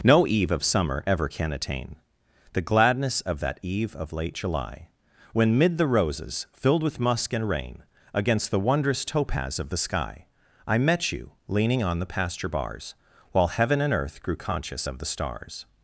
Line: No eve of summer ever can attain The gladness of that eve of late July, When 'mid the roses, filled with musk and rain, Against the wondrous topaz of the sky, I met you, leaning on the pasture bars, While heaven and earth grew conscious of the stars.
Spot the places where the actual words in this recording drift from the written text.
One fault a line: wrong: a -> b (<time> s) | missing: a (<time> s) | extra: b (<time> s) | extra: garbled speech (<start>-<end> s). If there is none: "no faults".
no faults